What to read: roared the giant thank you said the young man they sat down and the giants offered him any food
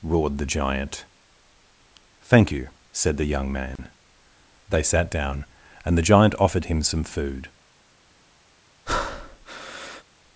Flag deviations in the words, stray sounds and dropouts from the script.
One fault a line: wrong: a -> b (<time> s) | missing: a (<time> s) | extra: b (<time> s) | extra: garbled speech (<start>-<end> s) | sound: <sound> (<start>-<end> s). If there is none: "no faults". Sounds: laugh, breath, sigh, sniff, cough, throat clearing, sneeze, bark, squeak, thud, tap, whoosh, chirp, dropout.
sound: dropout (3.8-3.8 s)
wrong: giants -> giant (6.1 s)
wrong: any -> some (6.8 s)
sound: breath (8.9-10.0 s)